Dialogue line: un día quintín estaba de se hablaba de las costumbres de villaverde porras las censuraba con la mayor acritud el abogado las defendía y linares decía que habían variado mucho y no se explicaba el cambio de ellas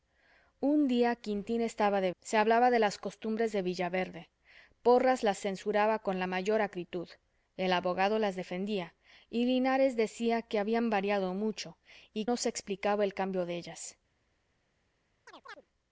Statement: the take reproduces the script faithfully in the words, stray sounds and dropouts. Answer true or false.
false